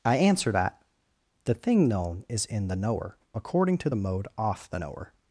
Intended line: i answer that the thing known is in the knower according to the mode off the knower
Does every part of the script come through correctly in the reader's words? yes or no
yes